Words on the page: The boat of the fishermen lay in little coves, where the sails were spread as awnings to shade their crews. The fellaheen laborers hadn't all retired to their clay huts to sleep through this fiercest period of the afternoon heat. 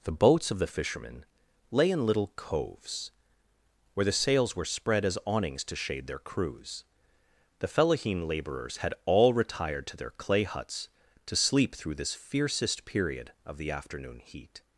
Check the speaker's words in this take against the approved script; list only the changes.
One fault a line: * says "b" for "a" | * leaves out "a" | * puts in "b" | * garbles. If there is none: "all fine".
* says "boats" for "boat"
* says "had" for "hadn't"